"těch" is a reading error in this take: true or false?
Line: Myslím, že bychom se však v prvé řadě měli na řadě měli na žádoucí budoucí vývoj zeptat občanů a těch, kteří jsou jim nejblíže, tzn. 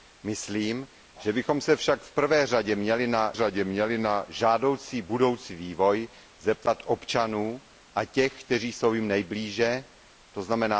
false